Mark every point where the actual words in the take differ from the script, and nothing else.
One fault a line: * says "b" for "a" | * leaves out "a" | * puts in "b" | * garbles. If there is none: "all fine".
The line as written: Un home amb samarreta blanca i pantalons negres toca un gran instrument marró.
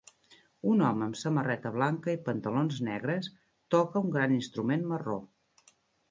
all fine